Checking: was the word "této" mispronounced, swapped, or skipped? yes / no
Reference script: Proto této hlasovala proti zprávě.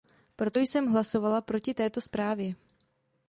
yes